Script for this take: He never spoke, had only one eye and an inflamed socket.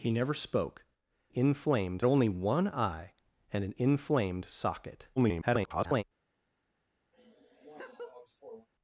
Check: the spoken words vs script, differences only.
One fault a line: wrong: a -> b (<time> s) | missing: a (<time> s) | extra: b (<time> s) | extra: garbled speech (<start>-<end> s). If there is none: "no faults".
wrong: had -> inflamed (1.3 s)
extra: garbled speech (5.2-6.0 s)